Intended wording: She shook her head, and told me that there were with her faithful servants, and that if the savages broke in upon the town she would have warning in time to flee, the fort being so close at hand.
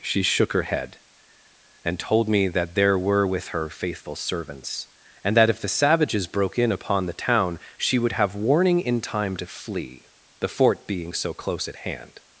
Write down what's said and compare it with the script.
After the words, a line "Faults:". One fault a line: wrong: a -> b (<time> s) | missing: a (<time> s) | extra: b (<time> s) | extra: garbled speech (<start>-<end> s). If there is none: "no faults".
She shook her head, and told me that there were with her faithful servants, and that if the savages broke in upon the town she would have warning in time to flee, the fort being so close at hand.
Faults:
no faults